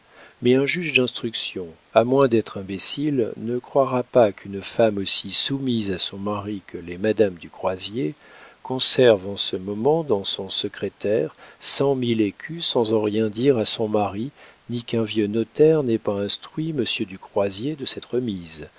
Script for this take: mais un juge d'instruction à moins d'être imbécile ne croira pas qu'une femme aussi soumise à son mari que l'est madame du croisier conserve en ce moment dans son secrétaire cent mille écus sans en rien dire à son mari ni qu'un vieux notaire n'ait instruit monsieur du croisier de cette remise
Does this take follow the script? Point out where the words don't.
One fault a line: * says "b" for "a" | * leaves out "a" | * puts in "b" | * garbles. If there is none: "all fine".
* puts in "pas"